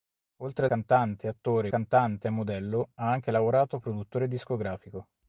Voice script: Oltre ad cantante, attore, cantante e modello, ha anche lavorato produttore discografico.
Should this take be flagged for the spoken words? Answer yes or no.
no